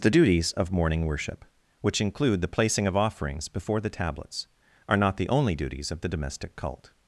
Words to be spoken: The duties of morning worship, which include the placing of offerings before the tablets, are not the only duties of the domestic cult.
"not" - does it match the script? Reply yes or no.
yes